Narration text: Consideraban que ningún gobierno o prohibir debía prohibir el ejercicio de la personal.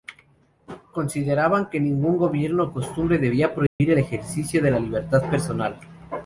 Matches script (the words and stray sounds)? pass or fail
fail